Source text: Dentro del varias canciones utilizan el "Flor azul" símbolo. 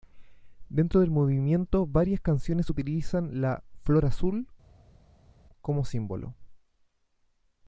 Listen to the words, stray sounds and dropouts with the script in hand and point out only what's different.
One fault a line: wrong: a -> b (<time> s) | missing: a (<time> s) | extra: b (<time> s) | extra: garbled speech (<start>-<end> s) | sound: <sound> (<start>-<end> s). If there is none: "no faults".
extra: movimiento (1.1 s)
wrong: el -> la (3.4 s)
extra: como (5.6 s)